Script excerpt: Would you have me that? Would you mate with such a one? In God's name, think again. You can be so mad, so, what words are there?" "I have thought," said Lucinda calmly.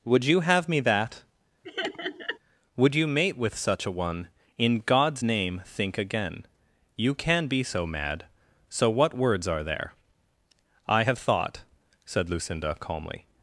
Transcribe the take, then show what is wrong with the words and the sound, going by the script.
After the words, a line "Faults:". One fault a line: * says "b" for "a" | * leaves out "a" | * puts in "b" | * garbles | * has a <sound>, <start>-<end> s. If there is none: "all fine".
Would you have me that? Would you mate with such a one? In God's name, think again. You can be so mad, so, what words are there?" "I have thought," said Lucinda calmly.
Faults:
* has a laugh, 1.6-2.4 s